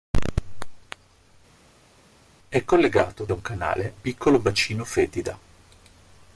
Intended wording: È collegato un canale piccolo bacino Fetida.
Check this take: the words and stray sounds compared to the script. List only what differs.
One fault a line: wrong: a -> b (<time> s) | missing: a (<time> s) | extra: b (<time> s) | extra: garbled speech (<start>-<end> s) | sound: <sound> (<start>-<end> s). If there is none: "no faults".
no faults